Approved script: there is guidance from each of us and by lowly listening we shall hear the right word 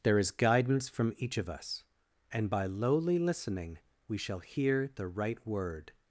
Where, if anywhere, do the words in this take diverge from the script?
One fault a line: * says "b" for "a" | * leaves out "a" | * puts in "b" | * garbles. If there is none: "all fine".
all fine